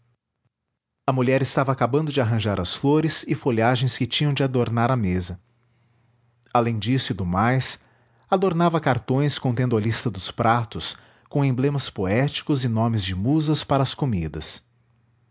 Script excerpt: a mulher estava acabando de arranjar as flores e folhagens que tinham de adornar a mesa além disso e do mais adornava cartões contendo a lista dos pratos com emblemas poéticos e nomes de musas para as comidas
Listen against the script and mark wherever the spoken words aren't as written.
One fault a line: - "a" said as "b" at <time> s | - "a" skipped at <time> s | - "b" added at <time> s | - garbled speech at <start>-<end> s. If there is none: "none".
none